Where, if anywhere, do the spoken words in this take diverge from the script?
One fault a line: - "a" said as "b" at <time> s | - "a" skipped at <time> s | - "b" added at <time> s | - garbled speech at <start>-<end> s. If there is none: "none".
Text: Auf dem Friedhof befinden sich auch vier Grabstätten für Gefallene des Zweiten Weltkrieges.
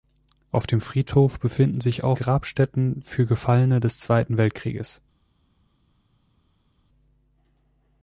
- "vier" skipped at 2.2 s